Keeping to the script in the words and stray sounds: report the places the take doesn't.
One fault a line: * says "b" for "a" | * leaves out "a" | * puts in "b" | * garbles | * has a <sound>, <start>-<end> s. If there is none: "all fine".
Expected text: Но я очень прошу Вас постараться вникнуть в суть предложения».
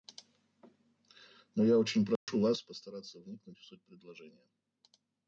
* has a dropout, 2.2-2.3 s